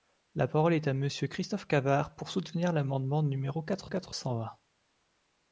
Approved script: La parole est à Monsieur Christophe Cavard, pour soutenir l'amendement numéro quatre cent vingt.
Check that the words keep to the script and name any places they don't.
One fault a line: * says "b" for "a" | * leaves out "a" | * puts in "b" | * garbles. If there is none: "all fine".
* puts in "quatre"